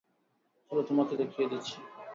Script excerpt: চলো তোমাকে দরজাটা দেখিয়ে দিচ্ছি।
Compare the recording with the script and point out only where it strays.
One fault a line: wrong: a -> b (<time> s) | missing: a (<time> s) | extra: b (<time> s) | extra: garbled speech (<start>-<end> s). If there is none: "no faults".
missing: দরজাটা (1.1 s)